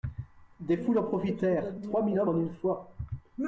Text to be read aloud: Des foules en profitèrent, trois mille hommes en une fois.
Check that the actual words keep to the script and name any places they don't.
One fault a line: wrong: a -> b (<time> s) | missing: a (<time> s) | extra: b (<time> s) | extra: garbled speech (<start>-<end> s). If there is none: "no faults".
no faults